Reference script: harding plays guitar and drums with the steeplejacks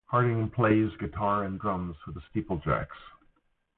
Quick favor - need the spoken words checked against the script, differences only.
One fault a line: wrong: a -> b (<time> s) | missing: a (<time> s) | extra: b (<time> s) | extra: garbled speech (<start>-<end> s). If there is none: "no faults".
no faults